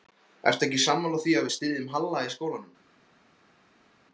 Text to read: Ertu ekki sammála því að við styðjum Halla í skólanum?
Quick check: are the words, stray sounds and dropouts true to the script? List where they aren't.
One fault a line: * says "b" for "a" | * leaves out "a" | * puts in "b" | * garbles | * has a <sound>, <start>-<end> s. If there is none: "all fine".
all fine